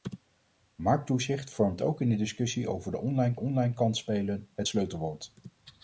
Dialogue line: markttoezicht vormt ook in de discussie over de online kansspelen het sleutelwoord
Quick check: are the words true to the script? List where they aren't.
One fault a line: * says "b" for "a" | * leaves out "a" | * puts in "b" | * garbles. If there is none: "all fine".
* puts in "online"